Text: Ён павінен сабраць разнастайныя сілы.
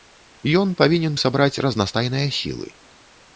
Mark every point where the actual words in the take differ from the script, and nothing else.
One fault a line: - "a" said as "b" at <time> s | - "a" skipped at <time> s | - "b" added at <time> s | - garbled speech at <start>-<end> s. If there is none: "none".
none